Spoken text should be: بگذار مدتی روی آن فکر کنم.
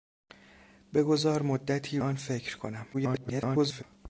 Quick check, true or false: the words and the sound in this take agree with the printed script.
false